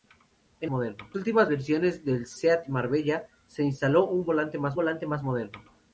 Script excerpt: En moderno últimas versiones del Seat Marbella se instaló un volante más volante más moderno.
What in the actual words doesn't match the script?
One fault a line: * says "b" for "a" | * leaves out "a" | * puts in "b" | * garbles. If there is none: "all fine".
all fine